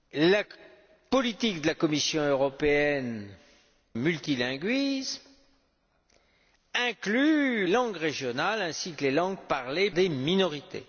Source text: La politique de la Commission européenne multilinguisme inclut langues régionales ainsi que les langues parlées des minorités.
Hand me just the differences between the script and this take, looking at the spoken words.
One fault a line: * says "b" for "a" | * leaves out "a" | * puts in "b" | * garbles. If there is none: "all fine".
all fine